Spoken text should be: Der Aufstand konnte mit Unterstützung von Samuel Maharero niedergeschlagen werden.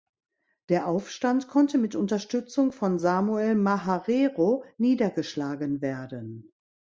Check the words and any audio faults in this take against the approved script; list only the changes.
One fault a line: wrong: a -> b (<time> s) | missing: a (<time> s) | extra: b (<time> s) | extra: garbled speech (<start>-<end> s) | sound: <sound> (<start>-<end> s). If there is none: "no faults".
no faults